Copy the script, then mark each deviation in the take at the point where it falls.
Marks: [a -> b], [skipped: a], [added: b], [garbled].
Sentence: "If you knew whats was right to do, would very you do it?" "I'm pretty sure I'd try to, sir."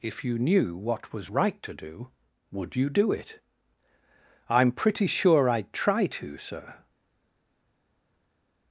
"If you knew [whats -> what] was right to do, would [skipped: very] you do it?" "I'm pretty sure I'd try to, sir."